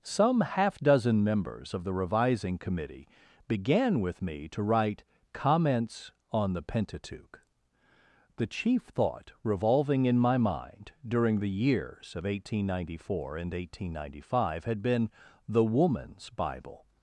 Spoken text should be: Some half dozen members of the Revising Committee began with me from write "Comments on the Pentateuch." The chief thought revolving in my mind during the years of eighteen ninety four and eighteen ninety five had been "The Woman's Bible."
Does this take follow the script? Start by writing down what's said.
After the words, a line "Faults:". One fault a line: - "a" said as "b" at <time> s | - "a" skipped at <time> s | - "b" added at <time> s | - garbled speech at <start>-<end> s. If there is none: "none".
Some half dozen members of the Revising Committee began with me to write "Comments on the Pentateuch." The chief thought revolving in my mind during the years of eighteen ninety four and eighteen ninety five had been "The Woman's Bible."
Faults:
- "from" said as "to" at 4.5 s